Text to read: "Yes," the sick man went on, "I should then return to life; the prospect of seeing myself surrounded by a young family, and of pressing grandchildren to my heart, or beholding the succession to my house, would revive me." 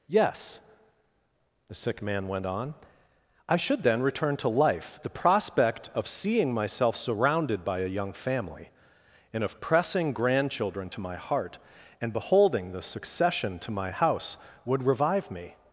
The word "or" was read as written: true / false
false